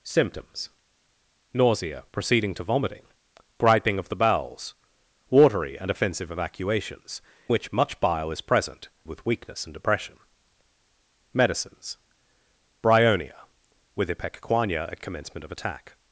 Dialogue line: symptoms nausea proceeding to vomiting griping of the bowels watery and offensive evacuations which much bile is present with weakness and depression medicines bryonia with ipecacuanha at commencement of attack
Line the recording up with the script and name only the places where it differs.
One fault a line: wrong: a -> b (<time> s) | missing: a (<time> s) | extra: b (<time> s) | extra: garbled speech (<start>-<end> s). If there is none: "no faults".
no faults